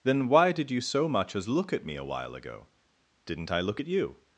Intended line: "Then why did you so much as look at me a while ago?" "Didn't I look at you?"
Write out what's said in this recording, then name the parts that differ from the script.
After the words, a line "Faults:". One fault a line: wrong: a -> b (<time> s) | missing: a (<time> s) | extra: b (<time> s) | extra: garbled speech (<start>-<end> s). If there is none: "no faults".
"Then why did you so much as look at me a while ago?" "Didn't I look at you?"
Faults:
no faults